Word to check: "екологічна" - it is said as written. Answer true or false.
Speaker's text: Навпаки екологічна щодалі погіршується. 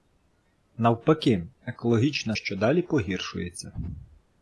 true